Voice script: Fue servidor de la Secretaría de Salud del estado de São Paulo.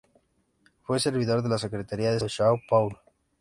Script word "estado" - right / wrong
wrong